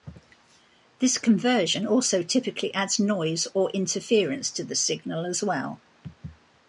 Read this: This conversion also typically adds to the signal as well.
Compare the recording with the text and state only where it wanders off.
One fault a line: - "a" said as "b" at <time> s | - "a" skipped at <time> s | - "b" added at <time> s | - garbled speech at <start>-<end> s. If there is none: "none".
- "noise or interference" added at 3.0 s